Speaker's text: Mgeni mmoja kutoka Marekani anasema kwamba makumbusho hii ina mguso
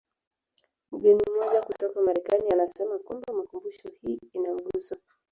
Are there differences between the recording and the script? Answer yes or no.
no